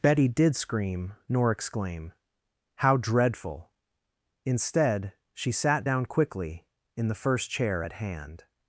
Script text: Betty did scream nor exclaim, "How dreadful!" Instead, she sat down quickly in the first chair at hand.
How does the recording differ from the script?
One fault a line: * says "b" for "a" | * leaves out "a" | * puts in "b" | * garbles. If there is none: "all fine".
all fine